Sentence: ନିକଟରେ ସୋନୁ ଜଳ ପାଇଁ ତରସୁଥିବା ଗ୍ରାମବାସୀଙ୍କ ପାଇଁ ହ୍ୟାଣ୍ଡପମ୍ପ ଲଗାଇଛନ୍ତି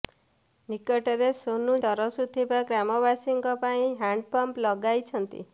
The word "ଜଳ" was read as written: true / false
false